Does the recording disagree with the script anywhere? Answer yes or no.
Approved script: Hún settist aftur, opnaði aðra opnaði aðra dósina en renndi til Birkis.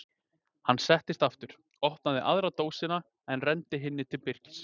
yes